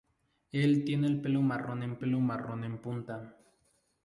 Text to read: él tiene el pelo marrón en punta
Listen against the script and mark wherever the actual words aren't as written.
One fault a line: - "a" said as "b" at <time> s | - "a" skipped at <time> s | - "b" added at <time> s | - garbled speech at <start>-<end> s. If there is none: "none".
- "pelo marrón en" added at 2.0 s